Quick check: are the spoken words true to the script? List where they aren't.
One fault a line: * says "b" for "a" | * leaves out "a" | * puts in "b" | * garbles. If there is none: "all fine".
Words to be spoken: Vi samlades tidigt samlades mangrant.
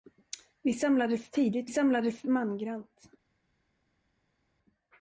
all fine